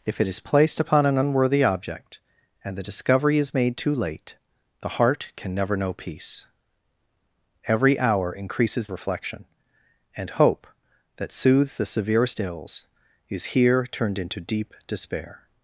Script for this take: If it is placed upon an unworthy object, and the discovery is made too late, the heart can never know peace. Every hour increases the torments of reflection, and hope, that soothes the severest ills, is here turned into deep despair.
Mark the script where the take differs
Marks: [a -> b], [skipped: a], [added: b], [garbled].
If it is placed upon an unworthy object, and the discovery is made too late, the heart can never know peace. Every hour increases [skipped: the torments of] reflection, and hope, that soothes the severest ills, is here turned into deep despair.